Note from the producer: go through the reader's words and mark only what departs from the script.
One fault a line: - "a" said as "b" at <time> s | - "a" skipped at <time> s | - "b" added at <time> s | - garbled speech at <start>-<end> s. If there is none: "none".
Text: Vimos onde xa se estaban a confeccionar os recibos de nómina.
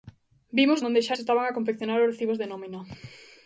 none